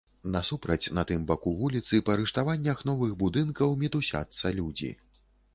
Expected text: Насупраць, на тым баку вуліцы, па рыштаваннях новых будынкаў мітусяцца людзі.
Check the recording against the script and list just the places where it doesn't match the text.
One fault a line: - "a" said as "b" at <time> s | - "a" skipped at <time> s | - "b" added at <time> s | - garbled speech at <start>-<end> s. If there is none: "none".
none